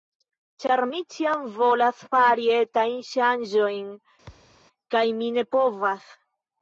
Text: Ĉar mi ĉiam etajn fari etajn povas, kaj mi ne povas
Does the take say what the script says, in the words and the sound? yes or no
no